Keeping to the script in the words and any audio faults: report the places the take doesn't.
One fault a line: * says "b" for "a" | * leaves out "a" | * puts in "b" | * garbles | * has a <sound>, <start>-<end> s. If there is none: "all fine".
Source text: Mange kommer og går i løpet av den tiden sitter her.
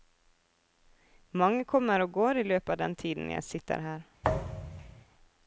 * puts in "jeg"
* has a thud, 4.2-5.1 s